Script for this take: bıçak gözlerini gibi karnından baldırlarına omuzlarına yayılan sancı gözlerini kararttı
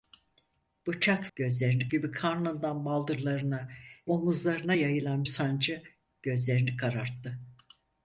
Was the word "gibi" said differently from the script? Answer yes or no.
no